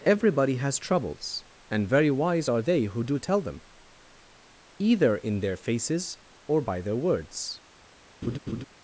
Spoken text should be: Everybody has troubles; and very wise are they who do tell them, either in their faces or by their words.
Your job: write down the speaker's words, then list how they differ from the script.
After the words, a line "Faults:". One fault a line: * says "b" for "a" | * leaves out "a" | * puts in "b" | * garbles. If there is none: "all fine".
Everybody has troubles; and very wise are they who do tell them, either in their faces or by their words.
Faults:
all fine